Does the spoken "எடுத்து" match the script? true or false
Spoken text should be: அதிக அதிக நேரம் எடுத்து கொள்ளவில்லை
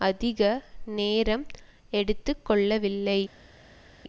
true